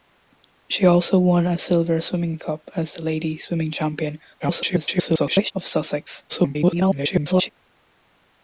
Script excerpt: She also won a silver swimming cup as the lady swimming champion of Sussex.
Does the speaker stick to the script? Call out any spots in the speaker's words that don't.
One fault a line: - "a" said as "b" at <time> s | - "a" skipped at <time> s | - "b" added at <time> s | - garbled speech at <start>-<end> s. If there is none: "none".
- garbled speech at 4.4-5.5 s
- garbled speech at 6.3-7.5 s